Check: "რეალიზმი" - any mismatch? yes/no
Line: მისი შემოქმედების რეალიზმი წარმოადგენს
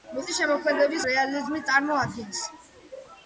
no